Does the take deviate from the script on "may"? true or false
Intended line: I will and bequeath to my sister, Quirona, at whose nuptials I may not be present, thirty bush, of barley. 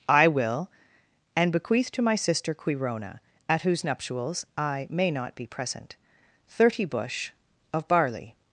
false